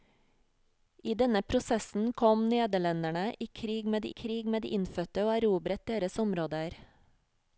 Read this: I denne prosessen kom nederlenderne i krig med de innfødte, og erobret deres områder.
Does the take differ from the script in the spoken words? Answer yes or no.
yes